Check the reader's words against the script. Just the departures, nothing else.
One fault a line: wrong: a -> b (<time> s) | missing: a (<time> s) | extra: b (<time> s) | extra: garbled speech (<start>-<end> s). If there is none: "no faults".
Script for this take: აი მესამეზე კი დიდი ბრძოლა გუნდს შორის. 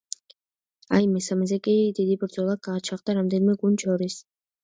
extra: გაჩაღდა რამდენიმე (2.7 s)